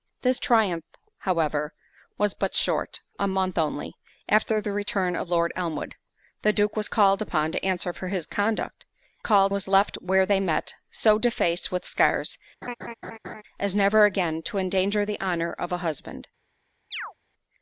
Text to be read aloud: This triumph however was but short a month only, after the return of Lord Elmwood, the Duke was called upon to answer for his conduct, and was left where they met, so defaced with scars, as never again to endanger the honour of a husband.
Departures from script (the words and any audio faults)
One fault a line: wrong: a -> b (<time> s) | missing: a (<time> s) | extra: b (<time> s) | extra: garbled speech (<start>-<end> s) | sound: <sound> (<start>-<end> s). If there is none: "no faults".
wrong: and -> called (9.2 s)
sound: laugh (12.6-13.4 s)
sound: chirp (16.9-17.1 s)